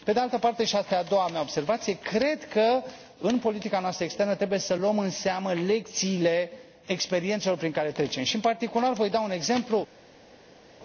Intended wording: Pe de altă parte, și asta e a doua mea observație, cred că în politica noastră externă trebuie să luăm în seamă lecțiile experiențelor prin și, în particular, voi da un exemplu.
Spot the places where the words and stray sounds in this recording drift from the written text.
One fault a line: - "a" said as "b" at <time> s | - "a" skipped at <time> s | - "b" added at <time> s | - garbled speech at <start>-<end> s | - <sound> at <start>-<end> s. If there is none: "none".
- "care trecem" added at 7.7 s